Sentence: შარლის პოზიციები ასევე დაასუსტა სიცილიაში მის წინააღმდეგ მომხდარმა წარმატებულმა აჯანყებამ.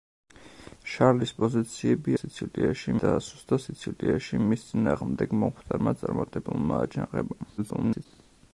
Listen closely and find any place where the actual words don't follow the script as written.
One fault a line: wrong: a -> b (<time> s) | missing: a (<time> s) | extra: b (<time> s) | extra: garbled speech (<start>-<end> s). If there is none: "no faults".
wrong: ასევე -> სიცილიაში (2.2 s)
extra: garbled speech (7.6-8.1 s)